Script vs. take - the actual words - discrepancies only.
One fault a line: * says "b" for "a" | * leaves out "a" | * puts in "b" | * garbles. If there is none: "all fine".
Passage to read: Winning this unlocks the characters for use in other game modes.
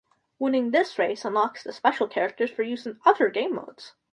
* puts in "race"
* puts in "special"